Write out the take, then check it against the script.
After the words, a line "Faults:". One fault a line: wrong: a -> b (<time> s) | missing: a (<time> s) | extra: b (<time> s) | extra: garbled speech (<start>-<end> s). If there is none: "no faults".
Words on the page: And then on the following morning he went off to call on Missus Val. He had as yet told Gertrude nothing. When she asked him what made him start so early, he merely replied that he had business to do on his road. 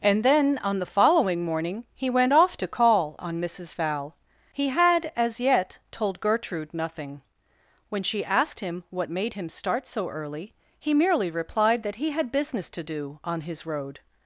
And then on the following morning he went off to call on Missus Val. He had as yet told Gertrude nothing. When she asked him what made him start so early, he merely replied that he had business to do on his road.
Faults:
no faults